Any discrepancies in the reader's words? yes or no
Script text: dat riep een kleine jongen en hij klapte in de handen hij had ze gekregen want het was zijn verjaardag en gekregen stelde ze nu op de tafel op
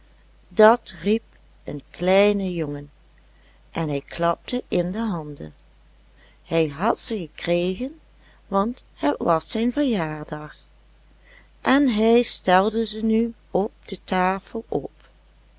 yes